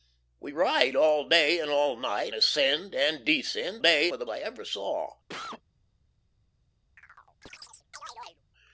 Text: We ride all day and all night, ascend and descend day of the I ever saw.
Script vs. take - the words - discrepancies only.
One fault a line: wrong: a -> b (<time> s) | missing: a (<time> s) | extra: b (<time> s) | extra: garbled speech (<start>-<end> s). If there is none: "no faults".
no faults